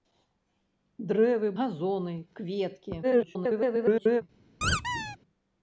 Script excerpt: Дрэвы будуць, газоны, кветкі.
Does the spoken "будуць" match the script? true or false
false